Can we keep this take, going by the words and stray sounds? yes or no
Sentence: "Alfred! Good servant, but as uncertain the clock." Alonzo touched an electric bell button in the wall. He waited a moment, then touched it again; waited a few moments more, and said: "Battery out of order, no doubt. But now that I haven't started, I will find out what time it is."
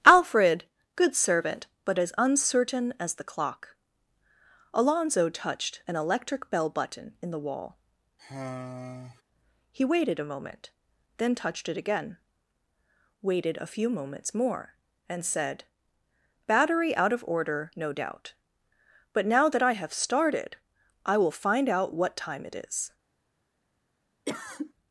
no